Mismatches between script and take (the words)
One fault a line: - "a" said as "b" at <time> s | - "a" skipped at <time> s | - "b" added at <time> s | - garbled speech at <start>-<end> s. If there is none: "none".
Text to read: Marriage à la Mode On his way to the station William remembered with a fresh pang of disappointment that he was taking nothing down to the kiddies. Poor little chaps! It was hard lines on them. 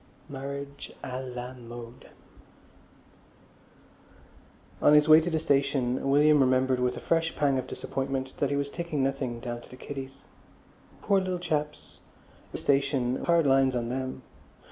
- "was" said as "station" at 12.6 s